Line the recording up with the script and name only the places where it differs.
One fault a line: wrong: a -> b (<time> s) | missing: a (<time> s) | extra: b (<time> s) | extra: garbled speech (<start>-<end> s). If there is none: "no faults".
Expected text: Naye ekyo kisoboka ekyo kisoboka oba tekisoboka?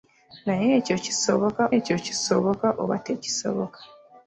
no faults